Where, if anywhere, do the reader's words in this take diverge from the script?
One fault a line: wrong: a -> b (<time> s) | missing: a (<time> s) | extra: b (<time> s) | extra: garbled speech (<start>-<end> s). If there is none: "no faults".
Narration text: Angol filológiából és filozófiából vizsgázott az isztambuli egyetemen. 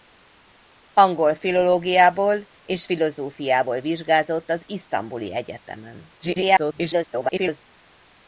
extra: garbled speech (6.2-7.6 s)